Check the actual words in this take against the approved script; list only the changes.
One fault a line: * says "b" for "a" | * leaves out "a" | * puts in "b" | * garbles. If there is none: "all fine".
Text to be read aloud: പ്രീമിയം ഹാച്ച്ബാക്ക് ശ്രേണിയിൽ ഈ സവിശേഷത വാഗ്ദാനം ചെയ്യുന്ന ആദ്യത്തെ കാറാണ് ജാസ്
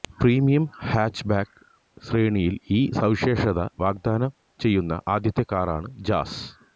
all fine